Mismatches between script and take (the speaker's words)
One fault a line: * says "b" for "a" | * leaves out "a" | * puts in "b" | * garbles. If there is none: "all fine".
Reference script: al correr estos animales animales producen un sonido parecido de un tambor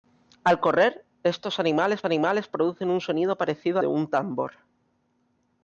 all fine